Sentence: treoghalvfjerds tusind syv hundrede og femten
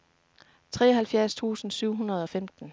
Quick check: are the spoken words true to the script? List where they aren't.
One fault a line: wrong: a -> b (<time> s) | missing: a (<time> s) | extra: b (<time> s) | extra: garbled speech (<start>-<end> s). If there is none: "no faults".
no faults